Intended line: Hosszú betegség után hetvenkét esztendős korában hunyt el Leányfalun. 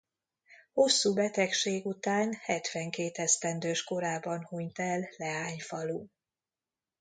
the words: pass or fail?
pass